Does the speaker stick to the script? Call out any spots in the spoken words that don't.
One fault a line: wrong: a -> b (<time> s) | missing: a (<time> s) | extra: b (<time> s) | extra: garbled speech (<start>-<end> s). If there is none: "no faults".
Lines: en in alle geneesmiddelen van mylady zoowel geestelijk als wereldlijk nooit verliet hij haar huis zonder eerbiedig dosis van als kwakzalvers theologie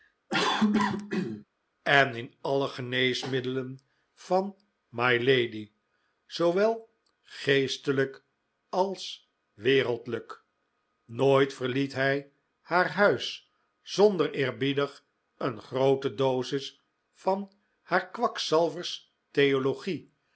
extra: een groote (15.4 s)
wrong: als -> haar (17.8 s)